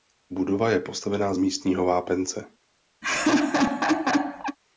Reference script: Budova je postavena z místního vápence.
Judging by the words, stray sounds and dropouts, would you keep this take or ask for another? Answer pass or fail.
fail